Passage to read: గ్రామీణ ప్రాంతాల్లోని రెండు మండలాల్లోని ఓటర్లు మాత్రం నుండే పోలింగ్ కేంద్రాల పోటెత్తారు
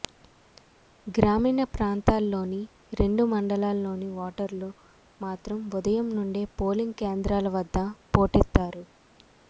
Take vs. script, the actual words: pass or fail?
fail